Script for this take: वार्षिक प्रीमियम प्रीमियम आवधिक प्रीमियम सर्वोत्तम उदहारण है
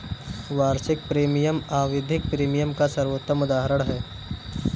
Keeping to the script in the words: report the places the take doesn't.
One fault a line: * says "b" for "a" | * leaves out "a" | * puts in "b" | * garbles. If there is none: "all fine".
* leaves out "प्रीमियम"
* puts in "का"